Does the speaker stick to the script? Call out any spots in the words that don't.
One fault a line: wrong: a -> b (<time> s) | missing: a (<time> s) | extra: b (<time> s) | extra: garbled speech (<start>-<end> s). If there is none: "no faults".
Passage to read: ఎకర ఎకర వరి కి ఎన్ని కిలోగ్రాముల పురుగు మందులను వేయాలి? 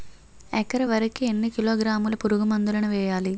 missing: ఎకర (0.8 s)